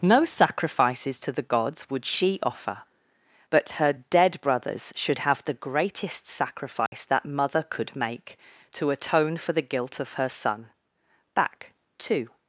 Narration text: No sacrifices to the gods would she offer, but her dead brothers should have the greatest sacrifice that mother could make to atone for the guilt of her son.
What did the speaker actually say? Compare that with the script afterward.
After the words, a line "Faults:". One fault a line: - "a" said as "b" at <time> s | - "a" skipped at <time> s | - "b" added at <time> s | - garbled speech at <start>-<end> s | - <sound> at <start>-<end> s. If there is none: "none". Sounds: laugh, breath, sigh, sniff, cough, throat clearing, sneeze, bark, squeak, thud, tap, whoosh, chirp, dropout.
No sacrifices to the gods would she offer, but her dead brothers should have the greatest sacrifice that mother could make to atone for the guilt of her son. Back to
Faults:
- dropout at 6.9-6.9 s
- "Back to" added at 11.3 s